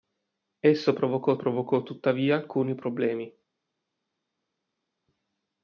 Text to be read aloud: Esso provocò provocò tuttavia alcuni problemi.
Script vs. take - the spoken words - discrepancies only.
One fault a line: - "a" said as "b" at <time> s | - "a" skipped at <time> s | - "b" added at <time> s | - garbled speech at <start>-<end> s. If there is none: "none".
none